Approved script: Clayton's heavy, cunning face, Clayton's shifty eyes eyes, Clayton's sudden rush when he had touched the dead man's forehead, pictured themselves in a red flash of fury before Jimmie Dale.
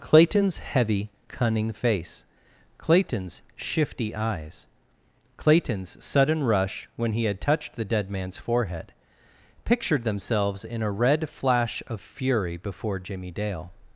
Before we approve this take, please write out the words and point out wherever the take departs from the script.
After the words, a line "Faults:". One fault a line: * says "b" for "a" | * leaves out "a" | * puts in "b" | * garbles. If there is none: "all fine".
Clayton's heavy, cunning face, Clayton's shifty eyes, Clayton's sudden rush when he had touched the dead man's forehead, pictured themselves in a red flash of fury before Jimmie Dale.
Faults:
* leaves out "eyes"